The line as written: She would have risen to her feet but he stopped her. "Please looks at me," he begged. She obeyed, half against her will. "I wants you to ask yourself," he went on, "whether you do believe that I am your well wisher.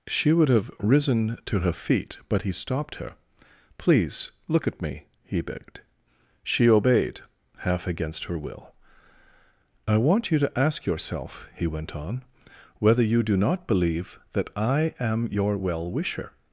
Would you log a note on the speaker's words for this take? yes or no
yes